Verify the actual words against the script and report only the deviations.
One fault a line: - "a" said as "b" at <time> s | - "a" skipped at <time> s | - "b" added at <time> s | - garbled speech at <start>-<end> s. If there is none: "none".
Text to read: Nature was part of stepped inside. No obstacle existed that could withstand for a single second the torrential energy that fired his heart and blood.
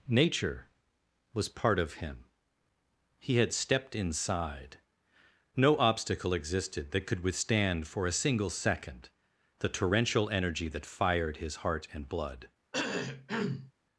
- "him He had" added at 1.9 s